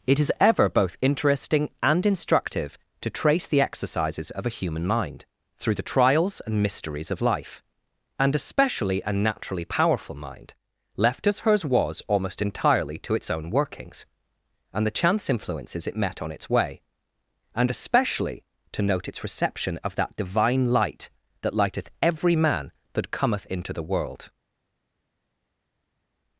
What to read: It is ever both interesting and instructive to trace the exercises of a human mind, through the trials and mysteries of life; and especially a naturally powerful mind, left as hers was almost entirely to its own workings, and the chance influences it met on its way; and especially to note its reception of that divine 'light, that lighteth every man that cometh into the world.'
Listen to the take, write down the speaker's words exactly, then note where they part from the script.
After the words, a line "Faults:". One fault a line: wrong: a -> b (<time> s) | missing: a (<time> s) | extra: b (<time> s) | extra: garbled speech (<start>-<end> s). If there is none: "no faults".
It is ever both interesting and instructive to trace the exercises of a human mind, through the trials and mysteries of life; and especially a naturally powerful mind, left as hers was almost entirely to its own workings, and the chance influences it met on its way; and especially to note its reception of that divine 'light, that lighteth every man that cometh into the world.'
Faults:
no faults